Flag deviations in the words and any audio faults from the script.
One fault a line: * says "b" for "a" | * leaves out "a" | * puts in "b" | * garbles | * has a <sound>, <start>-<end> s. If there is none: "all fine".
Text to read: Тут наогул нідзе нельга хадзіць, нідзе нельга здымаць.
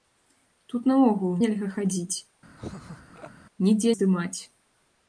* leaves out "нідзе"
* has a laugh, 2.6-3.3 s
* leaves out "нельга"